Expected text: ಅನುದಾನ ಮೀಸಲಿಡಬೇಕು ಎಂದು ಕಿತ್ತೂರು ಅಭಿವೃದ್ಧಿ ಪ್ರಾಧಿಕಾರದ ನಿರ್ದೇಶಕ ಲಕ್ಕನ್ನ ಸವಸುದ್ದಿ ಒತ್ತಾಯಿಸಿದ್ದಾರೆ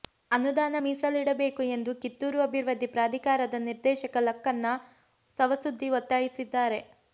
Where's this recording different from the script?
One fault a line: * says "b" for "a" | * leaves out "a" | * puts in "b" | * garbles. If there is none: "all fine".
all fine